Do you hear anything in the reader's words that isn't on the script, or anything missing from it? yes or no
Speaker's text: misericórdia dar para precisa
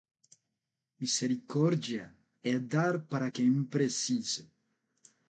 yes